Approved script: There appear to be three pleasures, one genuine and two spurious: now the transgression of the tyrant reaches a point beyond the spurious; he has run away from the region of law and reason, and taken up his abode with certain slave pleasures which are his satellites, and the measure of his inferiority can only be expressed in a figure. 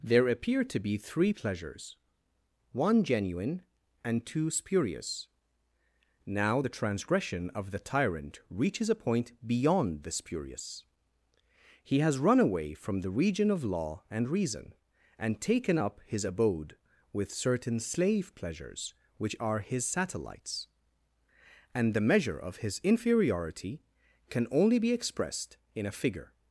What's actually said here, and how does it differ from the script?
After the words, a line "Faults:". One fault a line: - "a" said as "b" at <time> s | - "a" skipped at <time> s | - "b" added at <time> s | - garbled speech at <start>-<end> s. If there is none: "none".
There appear to be three pleasures, one genuine and two spurious: now the transgression of the tyrant reaches a point beyond the spurious; he has run away from the region of law and reason, and taken up his abode with certain slave pleasures which are his satellites, and the measure of his inferiority can only be expressed in a figure.
Faults:
none